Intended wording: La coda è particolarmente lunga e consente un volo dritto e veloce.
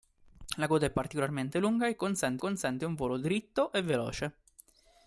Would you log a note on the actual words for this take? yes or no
yes